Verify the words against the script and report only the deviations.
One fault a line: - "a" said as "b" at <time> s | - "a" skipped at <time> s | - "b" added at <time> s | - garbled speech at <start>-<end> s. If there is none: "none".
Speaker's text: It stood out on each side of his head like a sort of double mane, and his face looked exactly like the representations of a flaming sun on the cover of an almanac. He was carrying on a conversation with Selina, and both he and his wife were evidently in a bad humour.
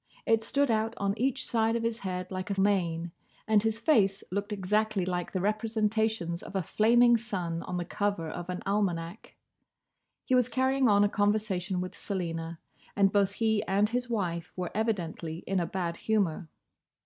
- "sort of double" skipped at 2.5 s